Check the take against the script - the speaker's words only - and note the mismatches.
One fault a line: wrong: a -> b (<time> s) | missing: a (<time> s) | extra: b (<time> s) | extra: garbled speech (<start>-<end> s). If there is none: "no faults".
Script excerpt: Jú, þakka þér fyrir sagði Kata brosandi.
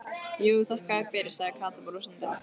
no faults